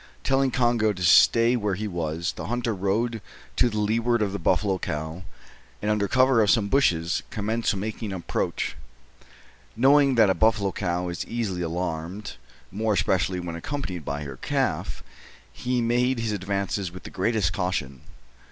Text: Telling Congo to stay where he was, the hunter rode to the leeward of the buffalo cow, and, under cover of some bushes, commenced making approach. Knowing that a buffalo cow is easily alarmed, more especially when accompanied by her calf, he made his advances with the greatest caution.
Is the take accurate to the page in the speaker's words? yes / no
yes